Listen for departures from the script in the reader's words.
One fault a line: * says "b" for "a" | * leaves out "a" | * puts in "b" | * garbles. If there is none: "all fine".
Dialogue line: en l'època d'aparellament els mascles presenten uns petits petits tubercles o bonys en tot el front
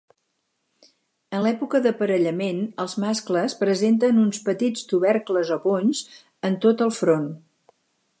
* leaves out "petits"